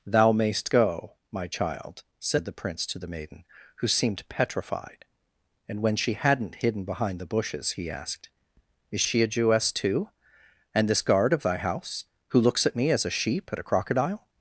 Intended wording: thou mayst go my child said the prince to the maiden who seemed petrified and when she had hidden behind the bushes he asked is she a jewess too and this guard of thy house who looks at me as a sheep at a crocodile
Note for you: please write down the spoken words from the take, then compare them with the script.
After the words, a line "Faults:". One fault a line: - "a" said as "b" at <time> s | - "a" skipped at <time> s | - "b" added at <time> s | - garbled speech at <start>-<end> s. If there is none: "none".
thou mayst go my child said the prince to the maiden who seemed petrified and when she hadn't hidden behind the bushes he asked is she a jewess too and this guard of thy house who looks at me as a sheep at a crocodile
Faults:
- "had" said as "hadn't" at 6.1 s